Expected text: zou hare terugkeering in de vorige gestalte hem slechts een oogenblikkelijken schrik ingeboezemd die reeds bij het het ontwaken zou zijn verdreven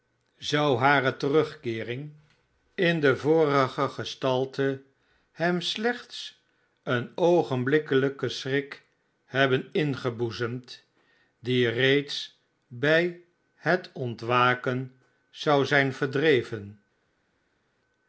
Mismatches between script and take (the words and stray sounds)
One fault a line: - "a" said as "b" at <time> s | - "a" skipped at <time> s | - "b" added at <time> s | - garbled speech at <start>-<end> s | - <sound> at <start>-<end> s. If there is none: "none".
- "hebben" added at 9.3 s
- "het" skipped at 13.9 s